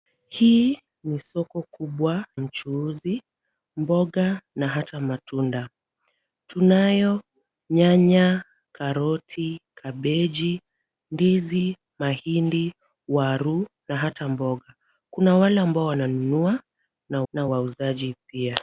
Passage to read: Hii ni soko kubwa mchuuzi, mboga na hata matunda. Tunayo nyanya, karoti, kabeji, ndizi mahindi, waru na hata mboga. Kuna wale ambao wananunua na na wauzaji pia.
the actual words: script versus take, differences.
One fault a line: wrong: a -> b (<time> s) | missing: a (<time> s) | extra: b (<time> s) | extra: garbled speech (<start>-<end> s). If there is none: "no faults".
no faults